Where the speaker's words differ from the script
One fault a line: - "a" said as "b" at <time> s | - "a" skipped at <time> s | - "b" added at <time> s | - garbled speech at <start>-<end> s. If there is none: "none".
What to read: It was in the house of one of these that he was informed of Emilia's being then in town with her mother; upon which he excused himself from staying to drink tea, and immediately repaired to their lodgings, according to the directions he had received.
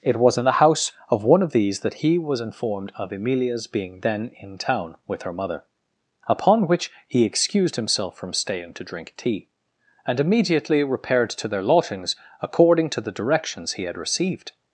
none